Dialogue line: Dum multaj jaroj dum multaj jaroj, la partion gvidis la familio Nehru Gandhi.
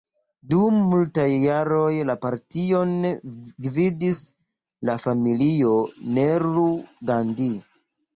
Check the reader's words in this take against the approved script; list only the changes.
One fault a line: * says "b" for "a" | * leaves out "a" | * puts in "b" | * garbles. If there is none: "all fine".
* leaves out "dum multaj jaroj"